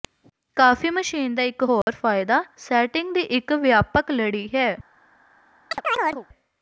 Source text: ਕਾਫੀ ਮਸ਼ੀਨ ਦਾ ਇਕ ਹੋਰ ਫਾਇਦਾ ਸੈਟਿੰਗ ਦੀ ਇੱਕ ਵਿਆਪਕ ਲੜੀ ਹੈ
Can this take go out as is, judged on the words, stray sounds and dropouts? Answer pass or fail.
fail